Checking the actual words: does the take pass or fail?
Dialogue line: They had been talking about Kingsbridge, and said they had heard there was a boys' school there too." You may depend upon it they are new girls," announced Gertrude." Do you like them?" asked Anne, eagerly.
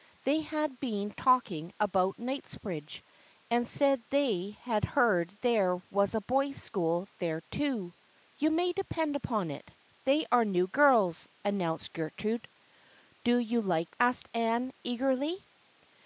fail